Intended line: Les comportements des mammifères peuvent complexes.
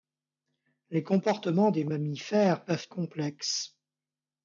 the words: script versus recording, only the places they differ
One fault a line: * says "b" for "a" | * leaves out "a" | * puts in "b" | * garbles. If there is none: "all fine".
all fine